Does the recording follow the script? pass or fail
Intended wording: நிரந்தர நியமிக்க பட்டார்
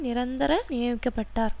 pass